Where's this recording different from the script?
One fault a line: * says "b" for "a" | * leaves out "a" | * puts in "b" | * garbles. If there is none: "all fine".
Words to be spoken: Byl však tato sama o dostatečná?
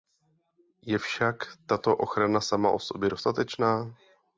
* says "Je" for "Byl"
* puts in "ochrana"
* puts in "sobě"